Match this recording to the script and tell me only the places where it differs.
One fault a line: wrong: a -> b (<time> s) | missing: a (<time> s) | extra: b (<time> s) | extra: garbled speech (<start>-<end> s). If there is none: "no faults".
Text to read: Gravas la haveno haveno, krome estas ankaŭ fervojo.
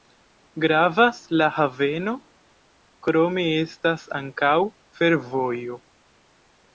missing: haveno (2.1 s)